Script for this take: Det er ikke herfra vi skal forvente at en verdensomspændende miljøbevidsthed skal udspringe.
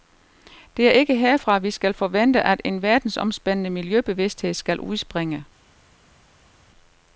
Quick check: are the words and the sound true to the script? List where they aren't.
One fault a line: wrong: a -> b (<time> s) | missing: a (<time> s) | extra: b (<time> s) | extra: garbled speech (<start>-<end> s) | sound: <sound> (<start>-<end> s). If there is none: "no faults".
no faults